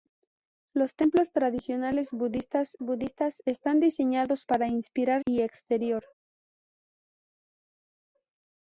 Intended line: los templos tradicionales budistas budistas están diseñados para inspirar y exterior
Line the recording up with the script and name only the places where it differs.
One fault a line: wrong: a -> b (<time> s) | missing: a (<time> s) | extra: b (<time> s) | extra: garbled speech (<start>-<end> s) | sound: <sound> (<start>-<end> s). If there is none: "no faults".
no faults